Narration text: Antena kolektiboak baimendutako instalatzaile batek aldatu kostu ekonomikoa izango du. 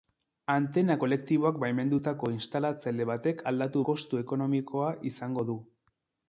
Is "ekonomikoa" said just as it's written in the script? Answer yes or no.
yes